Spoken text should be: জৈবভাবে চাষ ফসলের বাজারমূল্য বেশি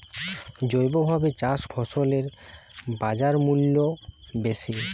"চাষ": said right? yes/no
yes